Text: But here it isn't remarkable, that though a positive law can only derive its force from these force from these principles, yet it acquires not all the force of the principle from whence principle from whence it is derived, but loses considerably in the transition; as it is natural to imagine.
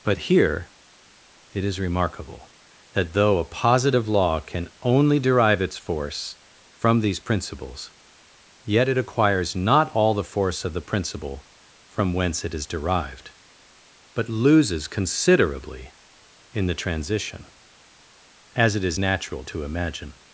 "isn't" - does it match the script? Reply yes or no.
no